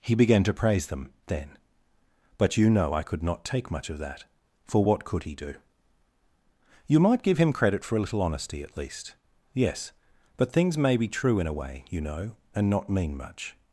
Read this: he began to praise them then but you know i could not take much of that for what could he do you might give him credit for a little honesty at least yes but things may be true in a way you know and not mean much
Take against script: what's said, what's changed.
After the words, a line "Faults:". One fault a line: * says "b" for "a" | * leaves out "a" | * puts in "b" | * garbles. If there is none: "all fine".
he began to praise them then but you know i could not take much of that for what could he do you might give him credit for a little honesty at least yes but things may be true in a way you know and not mean much
Faults:
all fine